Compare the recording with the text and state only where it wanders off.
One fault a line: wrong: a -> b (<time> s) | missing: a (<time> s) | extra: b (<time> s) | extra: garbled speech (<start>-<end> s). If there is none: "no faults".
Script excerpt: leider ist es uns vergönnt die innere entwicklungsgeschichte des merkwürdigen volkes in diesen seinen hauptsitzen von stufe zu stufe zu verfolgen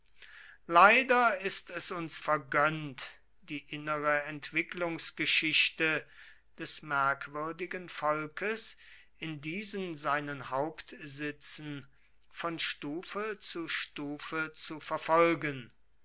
no faults